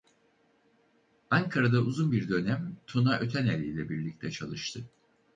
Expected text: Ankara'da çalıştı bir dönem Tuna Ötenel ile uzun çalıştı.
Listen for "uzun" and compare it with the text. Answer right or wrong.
wrong